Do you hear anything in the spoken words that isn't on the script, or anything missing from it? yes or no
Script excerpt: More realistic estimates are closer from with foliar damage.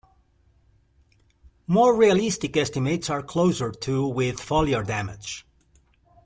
yes